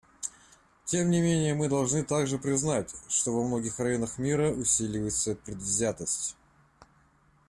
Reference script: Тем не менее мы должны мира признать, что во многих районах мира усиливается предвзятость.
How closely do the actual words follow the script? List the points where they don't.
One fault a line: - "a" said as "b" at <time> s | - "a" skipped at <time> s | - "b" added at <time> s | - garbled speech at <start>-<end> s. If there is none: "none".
- "мира" said as "также" at 2.0 s